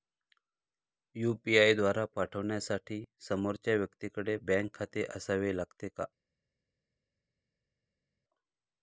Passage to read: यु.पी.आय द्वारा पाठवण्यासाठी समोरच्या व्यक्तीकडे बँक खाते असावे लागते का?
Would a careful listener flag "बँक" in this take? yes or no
no